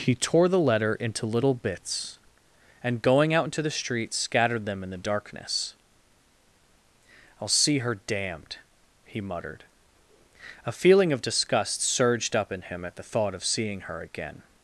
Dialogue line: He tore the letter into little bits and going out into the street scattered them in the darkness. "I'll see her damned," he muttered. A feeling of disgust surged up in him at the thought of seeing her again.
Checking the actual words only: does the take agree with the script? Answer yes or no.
yes